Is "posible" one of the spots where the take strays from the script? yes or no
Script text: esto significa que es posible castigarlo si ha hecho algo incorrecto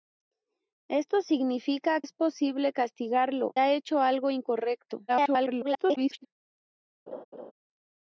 no